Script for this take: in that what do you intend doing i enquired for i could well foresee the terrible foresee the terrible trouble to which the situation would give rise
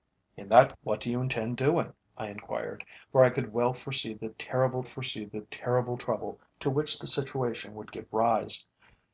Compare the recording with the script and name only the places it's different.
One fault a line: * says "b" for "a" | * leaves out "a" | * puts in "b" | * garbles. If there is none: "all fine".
all fine